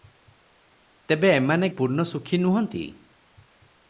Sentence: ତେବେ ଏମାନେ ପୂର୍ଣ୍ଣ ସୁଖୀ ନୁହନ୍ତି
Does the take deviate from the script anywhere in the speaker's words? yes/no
no